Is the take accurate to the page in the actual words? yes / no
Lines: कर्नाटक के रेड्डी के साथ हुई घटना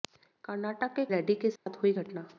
yes